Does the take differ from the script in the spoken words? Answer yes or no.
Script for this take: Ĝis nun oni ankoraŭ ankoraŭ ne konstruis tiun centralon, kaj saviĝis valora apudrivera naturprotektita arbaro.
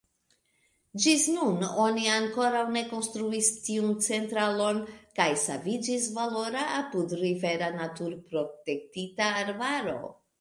yes